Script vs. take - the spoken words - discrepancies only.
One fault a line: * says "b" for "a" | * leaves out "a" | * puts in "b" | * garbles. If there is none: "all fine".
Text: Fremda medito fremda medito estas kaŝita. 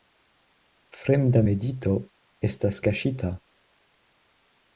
* leaves out "fremda medito"